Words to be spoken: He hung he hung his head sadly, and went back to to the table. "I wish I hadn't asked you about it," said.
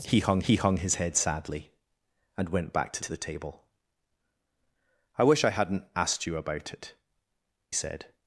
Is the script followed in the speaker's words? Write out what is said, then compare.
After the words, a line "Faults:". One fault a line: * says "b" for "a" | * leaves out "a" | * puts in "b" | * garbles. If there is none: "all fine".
He hung he hung his head sadly, and went back to to the table. "I wish I hadn't asked you about it," said.
Faults:
all fine